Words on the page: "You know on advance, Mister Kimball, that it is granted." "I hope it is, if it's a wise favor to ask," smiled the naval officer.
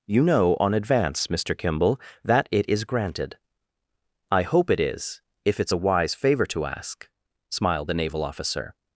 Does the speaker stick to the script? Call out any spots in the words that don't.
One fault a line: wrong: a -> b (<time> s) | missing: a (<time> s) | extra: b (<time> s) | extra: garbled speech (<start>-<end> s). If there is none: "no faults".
no faults